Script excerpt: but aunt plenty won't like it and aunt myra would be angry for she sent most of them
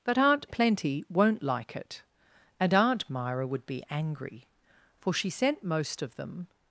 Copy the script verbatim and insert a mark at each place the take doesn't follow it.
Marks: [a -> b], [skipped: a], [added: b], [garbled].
but aunt plenty won't like it and aunt myra would be angry for she sent most of them